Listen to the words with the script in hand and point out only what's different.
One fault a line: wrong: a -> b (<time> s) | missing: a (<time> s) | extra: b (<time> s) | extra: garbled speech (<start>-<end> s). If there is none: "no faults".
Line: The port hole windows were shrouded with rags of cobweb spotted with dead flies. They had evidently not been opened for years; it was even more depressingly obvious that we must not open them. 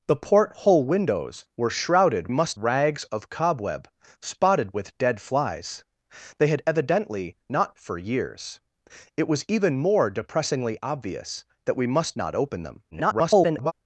wrong: with -> must (2.3 s)
missing: been opened (7.7 s)
extra: garbled speech (12.9-13.7 s)